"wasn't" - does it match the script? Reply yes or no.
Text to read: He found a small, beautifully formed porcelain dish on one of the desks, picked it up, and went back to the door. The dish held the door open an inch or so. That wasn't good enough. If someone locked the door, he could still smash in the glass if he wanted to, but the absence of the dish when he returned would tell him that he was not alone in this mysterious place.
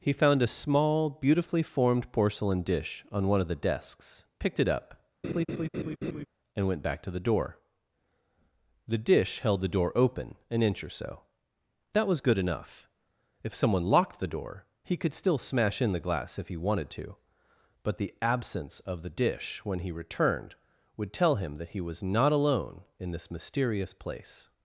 no